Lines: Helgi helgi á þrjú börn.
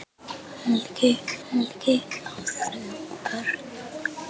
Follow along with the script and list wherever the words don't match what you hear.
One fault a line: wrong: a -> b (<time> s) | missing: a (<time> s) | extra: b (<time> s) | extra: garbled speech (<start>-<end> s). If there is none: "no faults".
no faults